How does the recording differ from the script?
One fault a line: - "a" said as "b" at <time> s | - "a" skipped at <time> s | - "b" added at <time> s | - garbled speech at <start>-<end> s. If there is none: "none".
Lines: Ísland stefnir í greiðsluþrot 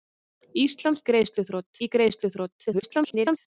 - "stefnir" said as "greiðsluþrot" at 1.1 s
- garbled speech at 2.7-3.4 s